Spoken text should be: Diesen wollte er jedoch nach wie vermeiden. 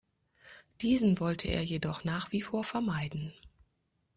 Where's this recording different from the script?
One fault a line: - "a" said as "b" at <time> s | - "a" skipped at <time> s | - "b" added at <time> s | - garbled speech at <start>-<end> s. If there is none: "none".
- "vor" added at 2.4 s